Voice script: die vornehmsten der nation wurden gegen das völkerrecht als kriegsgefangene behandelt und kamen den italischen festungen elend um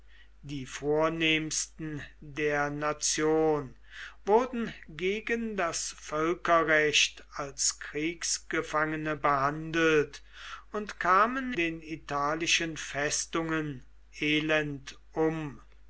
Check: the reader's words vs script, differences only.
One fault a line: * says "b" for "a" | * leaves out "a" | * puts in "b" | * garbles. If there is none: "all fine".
all fine